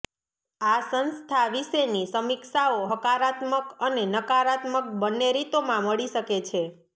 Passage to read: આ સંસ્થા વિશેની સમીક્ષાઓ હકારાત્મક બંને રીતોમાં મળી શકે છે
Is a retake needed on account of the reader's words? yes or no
yes